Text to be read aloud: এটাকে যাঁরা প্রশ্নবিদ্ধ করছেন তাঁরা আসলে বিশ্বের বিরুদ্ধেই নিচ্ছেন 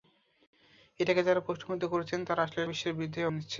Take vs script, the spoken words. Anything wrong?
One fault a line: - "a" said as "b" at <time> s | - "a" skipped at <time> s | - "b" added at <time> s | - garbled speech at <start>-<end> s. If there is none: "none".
none